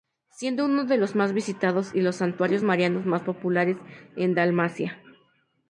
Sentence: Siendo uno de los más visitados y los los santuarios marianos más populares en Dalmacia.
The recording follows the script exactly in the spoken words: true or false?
false